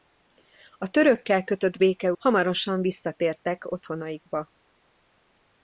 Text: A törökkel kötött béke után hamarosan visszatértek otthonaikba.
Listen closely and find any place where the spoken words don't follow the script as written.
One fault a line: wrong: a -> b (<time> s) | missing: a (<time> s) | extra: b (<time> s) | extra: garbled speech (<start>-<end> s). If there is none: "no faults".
missing: után (2.1 s)